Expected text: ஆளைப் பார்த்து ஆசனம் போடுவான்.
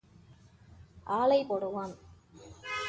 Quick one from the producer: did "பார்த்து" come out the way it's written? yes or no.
no